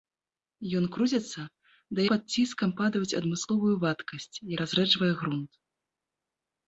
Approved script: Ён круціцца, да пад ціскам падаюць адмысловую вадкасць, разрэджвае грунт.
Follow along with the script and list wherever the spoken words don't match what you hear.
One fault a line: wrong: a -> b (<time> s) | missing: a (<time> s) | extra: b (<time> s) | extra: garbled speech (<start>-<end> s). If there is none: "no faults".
no faults